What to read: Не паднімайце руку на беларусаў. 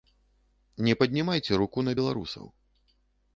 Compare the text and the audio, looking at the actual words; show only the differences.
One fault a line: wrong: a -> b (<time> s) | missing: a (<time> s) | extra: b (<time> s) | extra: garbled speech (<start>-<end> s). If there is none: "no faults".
no faults